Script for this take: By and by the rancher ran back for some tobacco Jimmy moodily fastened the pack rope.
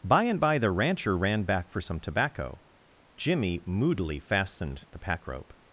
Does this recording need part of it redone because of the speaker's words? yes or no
no